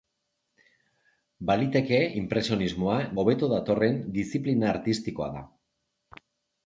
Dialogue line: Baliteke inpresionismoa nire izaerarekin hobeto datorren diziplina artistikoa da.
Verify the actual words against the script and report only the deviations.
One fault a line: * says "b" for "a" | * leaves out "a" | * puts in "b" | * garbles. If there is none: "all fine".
* leaves out "nire izaerarekin"